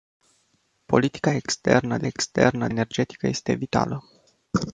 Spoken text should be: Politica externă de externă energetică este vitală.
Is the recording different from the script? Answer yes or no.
no